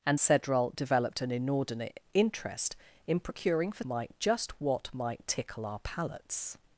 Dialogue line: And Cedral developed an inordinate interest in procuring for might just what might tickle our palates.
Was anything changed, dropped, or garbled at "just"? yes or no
no